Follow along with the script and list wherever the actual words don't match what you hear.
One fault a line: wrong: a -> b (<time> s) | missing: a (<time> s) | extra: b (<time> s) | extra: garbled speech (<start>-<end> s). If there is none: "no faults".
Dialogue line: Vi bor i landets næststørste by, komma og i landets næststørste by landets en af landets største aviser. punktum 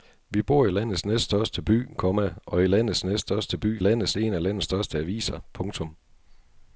no faults